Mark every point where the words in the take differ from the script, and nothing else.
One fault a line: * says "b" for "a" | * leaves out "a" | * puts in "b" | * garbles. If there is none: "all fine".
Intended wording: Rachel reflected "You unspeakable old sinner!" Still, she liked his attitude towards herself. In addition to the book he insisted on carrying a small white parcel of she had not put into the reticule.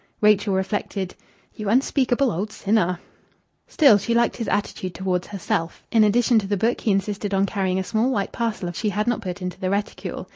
all fine